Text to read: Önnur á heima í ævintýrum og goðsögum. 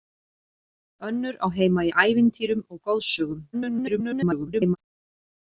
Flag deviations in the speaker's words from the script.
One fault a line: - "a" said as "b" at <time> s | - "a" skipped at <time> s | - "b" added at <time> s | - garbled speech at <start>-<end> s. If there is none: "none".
- garbled speech at 3.5-4.8 s